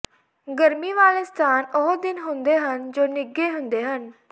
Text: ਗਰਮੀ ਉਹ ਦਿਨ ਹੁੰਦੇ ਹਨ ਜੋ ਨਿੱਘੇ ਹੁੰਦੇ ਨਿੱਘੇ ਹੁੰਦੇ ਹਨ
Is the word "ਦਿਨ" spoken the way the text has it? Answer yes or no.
yes